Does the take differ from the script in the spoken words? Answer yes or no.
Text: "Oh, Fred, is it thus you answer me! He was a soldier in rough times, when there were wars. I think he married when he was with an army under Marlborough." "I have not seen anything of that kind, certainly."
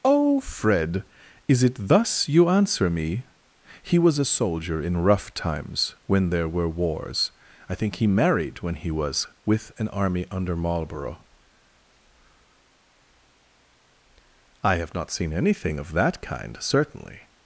no